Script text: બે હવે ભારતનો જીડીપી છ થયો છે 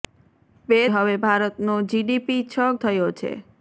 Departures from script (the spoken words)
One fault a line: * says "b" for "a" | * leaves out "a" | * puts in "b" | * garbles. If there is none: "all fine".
all fine